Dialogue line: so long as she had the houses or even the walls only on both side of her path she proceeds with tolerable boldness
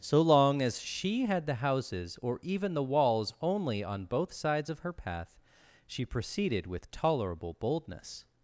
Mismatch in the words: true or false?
true